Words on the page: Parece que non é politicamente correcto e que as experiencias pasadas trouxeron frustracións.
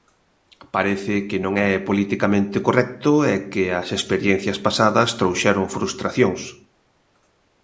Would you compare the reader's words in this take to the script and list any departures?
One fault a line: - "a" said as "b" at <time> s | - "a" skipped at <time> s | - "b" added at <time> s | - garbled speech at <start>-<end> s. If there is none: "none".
none